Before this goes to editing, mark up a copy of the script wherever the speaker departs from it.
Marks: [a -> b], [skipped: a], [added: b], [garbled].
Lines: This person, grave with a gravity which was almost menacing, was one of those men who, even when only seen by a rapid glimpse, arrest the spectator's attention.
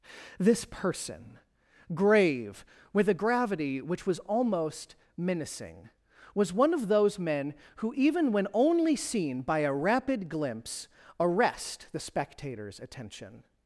This person, grave with a gravity which was almost menacing, was one of those men who, even when only seen by a rapid glimpse, arrest the spectator's attention.